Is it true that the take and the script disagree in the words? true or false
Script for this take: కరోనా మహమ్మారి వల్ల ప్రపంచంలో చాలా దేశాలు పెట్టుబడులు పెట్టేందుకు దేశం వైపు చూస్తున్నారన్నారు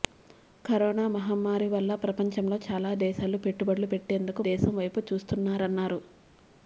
false